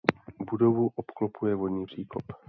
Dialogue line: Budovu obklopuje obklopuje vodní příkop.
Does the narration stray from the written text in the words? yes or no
yes